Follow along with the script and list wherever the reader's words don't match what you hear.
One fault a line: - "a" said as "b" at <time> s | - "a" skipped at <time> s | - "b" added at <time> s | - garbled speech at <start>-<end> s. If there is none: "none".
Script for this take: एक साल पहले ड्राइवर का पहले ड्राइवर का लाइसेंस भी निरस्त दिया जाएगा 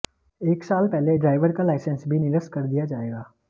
- "पहले ड्राइवर का" skipped at 1.6 s
- "कर" added at 2.5 s